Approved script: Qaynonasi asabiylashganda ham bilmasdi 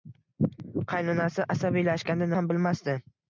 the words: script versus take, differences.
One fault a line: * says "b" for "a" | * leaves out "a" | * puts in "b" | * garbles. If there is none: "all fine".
all fine